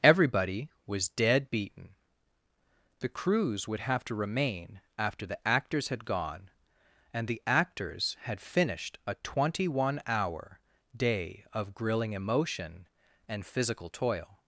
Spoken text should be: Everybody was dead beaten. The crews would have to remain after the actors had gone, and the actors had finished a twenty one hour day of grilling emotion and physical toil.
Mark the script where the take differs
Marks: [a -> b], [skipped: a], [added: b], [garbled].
Everybody was dead beaten. The crews would have to remain after the actors had gone, and the actors had finished a twenty one hour day of grilling emotion and physical toil.